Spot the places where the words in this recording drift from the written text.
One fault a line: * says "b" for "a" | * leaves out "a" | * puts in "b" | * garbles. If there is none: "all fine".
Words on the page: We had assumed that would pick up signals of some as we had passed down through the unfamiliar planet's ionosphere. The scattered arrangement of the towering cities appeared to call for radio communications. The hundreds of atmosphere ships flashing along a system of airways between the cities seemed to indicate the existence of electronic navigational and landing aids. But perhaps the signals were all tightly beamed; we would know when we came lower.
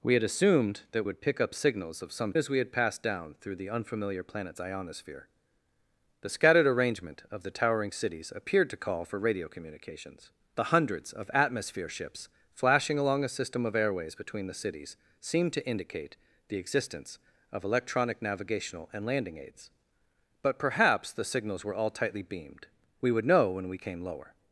all fine